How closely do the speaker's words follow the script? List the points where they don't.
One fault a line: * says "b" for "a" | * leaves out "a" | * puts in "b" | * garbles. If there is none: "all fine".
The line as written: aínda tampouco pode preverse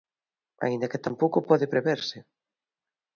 * puts in "que"